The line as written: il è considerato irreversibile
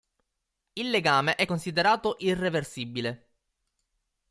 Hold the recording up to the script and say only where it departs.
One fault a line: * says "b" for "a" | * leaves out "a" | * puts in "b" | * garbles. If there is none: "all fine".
* puts in "legame"